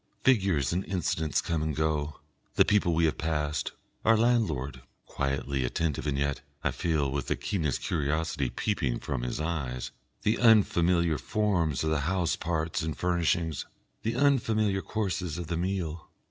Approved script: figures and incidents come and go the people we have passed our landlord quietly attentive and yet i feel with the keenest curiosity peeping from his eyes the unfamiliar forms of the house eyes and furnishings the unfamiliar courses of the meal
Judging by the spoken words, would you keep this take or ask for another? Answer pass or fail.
fail